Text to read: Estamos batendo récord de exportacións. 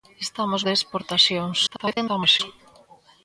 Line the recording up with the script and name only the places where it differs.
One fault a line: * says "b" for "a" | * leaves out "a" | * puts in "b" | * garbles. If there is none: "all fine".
* leaves out "batendo récord"
* garbles